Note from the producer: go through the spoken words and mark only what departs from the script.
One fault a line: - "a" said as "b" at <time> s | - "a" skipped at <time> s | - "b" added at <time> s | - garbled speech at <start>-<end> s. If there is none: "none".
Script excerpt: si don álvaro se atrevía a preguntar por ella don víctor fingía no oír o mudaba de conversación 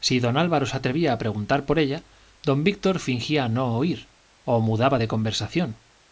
none